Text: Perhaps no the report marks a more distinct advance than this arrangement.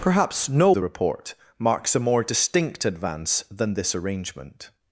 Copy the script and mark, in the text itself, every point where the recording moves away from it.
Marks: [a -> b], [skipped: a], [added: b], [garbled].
Perhaps no the report marks a more distinct advance than this arrangement.